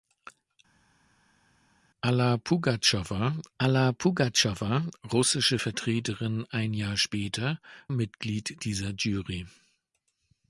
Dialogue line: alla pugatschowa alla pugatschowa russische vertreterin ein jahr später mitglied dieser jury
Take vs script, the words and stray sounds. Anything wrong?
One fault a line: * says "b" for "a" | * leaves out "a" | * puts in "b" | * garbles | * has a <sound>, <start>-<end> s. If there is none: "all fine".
all fine